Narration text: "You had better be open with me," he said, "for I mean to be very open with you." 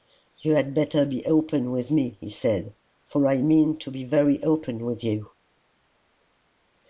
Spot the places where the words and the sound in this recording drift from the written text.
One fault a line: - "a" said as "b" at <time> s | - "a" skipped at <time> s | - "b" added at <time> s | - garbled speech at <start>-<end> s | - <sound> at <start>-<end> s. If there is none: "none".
none